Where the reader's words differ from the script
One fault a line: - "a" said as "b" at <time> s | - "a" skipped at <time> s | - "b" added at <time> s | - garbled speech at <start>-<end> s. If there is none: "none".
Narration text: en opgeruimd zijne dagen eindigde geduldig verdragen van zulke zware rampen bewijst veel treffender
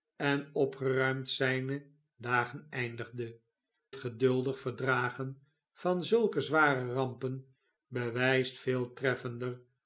none